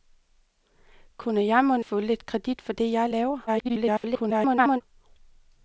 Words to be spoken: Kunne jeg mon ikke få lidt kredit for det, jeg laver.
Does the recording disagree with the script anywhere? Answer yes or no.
yes